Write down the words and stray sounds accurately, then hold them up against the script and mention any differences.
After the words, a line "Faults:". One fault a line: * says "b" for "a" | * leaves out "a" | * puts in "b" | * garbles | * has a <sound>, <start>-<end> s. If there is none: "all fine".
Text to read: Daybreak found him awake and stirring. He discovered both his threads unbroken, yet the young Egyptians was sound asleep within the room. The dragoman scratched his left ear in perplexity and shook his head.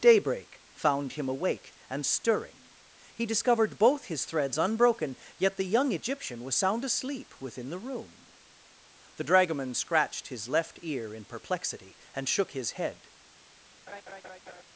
Daybreak found him awake and stirring. He discovered both his threads unbroken, yet the young Egyptian was sound asleep within the room. The dragoman scratched his left ear in perplexity and shook his head.
Faults:
* says "Egyptian" for "Egyptians"
* has a laugh, 13.9-14.6 s